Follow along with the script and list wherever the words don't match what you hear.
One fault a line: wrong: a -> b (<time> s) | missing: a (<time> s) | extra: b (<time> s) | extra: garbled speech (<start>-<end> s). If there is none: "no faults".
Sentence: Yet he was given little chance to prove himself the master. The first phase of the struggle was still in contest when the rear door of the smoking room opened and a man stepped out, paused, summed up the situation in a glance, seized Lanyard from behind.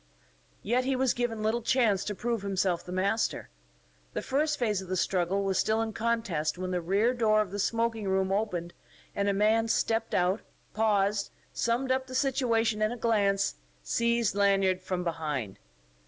no faults